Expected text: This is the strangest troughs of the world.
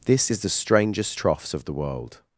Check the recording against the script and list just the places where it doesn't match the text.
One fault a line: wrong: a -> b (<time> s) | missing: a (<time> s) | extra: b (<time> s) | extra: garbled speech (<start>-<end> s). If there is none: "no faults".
no faults